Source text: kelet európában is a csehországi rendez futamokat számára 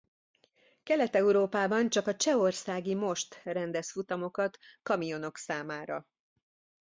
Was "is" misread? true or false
true